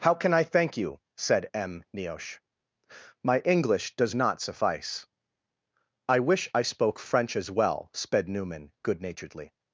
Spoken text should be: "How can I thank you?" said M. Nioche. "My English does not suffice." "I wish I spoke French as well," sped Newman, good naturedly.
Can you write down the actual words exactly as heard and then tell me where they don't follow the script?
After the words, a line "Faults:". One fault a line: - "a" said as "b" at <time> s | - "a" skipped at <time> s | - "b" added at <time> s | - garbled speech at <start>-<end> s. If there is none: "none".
"How can I thank you?" said M. Nioche. "My English does not suffice." "I wish I spoke French as well," sped Newman, good naturedly.
Faults:
none